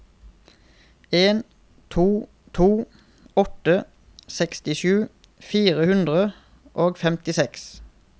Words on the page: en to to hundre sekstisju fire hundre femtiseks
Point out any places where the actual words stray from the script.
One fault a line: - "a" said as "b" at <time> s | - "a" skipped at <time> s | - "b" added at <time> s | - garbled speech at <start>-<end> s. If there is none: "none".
- "hundre" said as "åtte" at 3.4 s
- "og" added at 6.7 s